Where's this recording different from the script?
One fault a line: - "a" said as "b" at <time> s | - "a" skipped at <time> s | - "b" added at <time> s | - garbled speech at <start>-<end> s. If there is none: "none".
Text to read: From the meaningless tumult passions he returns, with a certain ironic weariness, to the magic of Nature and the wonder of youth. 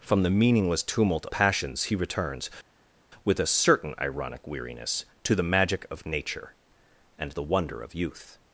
none